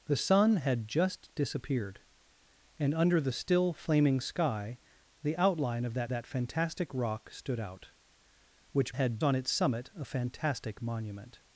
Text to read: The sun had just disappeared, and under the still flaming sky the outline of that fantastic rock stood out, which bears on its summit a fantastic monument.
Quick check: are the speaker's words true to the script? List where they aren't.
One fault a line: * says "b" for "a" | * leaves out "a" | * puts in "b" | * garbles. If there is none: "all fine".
* puts in "that"
* says "had" for "bears"